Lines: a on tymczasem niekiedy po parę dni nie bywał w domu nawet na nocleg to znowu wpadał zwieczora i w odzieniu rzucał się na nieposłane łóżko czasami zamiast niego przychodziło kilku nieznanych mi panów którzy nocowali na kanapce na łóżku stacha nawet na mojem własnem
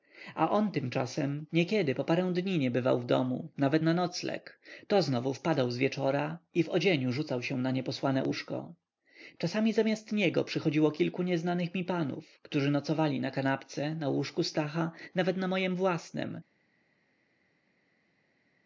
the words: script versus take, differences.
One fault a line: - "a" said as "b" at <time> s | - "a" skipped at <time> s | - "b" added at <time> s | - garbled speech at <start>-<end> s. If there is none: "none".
none